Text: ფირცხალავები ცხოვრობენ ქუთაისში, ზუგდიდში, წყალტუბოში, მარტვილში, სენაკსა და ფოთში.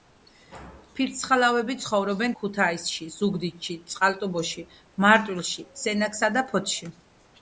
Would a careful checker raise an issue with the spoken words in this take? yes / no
no